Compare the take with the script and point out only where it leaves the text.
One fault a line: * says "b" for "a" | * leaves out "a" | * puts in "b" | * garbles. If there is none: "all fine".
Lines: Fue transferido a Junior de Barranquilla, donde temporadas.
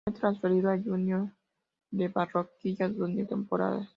all fine